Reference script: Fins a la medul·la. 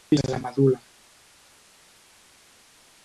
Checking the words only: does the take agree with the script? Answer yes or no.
yes